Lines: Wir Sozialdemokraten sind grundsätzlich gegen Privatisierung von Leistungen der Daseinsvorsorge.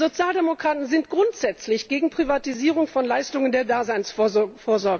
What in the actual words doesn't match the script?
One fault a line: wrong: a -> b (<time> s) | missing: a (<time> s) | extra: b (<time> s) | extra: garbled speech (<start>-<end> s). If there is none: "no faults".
no faults